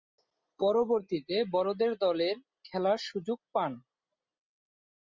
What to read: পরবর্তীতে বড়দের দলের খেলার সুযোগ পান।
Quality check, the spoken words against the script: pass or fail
pass